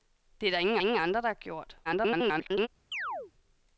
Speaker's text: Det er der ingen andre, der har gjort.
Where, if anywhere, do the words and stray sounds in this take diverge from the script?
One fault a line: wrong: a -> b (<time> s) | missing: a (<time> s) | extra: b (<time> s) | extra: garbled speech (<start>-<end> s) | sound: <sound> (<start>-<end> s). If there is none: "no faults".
extra: ingen (0.8 s)
extra: garbled speech (1.8-2.7 s)
sound: chirp (2.9-3.3 s)